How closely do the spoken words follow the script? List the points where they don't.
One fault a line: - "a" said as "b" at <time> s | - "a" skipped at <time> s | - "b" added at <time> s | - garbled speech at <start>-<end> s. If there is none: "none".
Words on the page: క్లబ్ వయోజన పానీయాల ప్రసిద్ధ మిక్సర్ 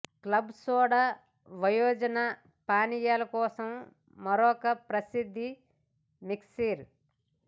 - "సోడా" added at 0.6 s
- "కోసం మరొక" added at 3.3 s